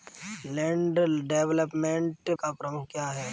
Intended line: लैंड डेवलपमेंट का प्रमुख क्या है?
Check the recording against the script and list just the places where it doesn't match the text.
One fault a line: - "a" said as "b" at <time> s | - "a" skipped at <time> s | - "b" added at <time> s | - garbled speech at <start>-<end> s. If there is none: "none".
none